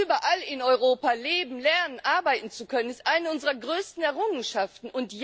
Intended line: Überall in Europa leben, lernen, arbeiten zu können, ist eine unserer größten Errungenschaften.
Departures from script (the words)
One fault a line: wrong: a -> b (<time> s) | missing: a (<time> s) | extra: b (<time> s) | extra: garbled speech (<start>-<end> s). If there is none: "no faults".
no faults